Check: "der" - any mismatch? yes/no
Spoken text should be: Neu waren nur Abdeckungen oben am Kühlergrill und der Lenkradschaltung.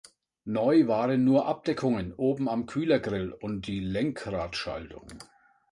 yes